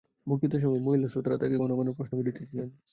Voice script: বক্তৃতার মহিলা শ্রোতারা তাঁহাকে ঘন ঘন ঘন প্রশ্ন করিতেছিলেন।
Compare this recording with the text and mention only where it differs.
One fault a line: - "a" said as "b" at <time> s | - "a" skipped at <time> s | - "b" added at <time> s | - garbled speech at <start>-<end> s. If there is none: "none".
- "সময়" added at 0.6 s
- "ঘন" skipped at 1.9 s